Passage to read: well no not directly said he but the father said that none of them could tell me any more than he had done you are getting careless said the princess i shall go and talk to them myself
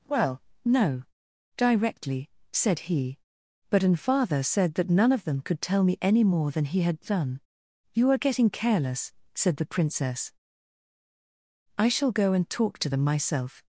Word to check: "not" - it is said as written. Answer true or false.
false